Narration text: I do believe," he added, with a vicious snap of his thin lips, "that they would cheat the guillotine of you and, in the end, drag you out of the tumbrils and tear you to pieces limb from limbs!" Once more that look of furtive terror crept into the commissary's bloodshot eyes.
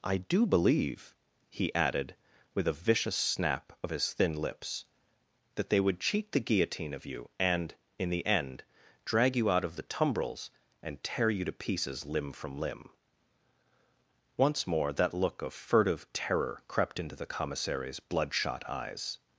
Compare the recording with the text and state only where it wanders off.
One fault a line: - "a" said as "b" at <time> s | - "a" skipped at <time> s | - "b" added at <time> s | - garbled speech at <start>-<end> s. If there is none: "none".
- "limbs" said as "limb" at 12.6 s